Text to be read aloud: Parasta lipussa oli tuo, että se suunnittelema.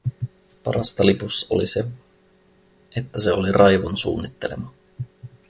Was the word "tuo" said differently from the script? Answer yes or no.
yes